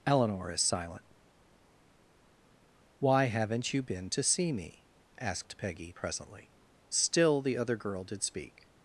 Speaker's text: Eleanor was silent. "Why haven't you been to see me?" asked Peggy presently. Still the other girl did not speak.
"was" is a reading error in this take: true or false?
true